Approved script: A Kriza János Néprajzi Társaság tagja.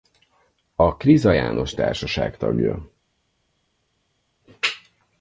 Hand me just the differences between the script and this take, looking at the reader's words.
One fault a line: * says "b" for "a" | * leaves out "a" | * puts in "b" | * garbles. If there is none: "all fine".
* leaves out "Néprajzi"